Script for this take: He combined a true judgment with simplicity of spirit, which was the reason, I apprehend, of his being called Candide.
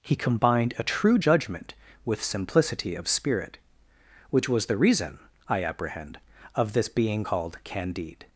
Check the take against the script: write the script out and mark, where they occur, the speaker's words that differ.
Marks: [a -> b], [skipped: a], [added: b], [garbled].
He combined a true judgment with simplicity of spirit, which was the reason, I apprehend, of [his -> this] being called Candide.